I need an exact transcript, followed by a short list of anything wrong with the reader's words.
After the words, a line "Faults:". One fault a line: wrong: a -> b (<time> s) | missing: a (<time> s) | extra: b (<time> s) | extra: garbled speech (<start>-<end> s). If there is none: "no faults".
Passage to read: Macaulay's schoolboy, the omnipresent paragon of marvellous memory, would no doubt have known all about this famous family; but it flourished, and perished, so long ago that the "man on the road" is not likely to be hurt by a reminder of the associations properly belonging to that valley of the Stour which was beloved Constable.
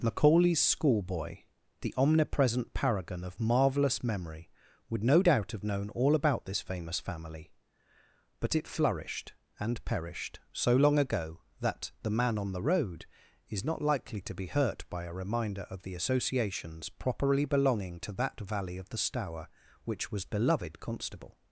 Macaulay's schoolboy, the omnipresent paragon of marvellous memory, would no doubt have known all about this famous family; but it flourished, and perished, so long ago that the "man on the road" is not likely to be hurt by a reminder of the associations properly belonging to that valley of the Stour which was beloved Constable.
Faults:
no faults